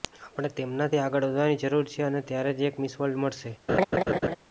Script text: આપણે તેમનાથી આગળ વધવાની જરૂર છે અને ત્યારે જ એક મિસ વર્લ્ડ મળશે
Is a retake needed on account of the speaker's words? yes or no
no